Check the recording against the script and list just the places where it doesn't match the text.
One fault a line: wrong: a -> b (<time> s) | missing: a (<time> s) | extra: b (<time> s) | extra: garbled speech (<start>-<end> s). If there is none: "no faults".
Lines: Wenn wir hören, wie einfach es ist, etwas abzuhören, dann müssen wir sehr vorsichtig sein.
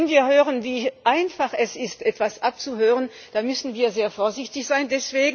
no faults